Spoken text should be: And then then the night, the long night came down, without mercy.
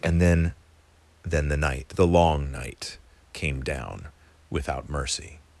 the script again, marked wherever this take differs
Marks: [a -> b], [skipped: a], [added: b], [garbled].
And then then the night, the long night came down, without mercy.